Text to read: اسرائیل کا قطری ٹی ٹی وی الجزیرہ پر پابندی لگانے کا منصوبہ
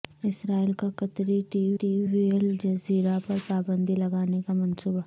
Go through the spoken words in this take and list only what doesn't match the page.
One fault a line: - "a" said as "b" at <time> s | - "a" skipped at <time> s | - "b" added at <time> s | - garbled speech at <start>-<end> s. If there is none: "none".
none